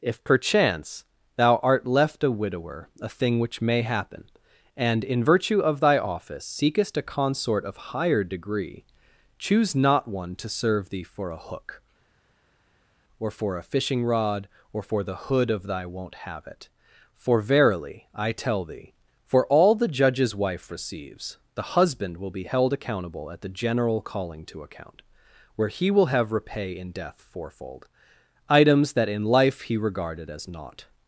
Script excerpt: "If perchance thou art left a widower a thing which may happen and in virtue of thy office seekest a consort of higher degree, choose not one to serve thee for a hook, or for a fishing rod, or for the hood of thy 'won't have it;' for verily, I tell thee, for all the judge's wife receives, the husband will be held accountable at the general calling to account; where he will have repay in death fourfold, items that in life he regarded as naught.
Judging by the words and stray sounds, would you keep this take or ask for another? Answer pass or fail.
pass